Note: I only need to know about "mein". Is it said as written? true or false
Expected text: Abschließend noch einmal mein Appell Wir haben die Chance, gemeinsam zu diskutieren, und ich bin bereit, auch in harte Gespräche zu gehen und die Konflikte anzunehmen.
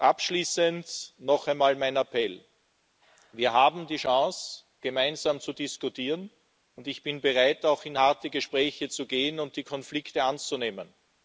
true